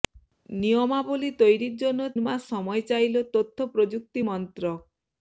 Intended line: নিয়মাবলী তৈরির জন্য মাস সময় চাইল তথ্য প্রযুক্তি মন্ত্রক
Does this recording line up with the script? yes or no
yes